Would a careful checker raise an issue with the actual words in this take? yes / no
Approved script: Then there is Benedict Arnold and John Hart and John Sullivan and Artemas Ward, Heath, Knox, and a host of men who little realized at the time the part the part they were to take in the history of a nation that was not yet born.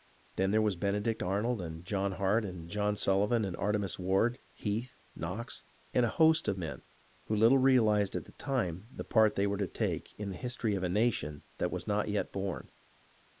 yes